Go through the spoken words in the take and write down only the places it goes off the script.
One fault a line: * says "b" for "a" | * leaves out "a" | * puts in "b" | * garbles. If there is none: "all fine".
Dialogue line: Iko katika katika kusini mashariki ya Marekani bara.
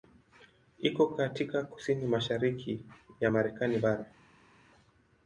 * leaves out "katika"